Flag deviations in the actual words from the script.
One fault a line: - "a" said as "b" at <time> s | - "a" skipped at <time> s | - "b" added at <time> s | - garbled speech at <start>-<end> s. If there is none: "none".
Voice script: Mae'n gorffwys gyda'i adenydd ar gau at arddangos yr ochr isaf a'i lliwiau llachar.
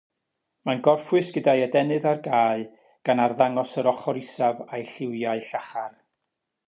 - "at" said as "gan" at 3.1 s